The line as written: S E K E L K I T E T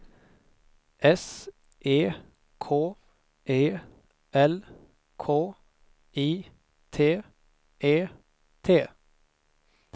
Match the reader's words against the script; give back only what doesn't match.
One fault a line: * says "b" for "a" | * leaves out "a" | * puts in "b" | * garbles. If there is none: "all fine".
all fine